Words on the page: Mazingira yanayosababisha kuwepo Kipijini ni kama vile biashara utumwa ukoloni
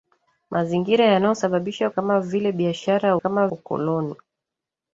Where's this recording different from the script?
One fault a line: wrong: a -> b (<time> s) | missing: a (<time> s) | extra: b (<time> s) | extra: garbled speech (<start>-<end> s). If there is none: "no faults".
missing: kuwepo Kipijini ni (1.9 s)
wrong: utumwa -> kama (3.2 s)